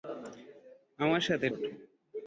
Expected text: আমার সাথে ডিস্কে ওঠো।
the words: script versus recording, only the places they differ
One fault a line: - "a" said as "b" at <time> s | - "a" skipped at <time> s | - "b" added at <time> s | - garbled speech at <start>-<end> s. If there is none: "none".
- "ডিস্কে" skipped at 1.5 s